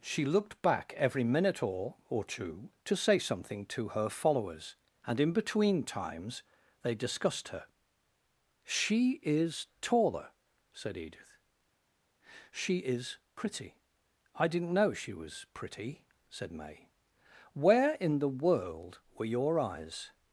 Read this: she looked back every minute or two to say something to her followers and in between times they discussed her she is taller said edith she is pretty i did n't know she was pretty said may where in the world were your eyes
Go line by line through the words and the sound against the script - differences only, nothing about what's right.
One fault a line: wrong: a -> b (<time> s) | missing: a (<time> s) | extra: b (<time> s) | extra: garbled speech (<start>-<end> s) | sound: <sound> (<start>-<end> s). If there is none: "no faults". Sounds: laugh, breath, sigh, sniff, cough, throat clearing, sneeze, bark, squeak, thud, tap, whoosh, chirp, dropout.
extra: or (2.1 s)